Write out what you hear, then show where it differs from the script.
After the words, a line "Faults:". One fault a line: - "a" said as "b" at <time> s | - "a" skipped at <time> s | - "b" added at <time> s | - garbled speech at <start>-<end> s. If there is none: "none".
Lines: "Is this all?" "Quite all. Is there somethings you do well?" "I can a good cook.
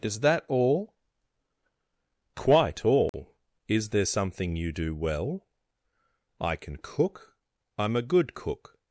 "Is that all?" "Quite all. Is there something you do well?" "I can cook. I'm a good cook.
Faults:
- "this" said as "that" at 0.2 s
- "somethings" said as "something" at 4.0 s
- "cook I'm" added at 6.8 s